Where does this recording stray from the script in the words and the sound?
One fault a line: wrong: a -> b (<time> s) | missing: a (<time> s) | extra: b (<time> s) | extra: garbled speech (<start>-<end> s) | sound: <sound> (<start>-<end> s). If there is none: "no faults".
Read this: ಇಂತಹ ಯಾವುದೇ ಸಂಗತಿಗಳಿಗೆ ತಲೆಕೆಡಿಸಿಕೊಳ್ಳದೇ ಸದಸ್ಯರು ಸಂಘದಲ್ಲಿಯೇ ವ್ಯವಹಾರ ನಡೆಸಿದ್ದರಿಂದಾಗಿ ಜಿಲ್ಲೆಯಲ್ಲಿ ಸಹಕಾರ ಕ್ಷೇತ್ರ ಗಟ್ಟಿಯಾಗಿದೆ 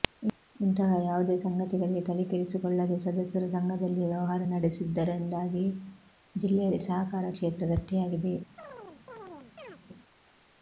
sound: chirp (8.6-9.8 s)